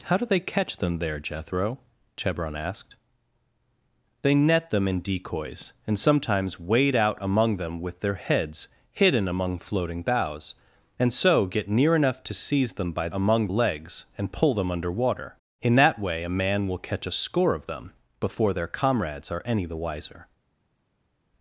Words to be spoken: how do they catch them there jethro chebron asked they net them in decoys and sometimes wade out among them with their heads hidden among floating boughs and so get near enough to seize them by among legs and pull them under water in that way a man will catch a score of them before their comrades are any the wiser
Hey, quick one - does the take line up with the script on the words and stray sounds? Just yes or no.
yes